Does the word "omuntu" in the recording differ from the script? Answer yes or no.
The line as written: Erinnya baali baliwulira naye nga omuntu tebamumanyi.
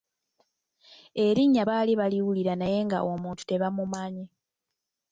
no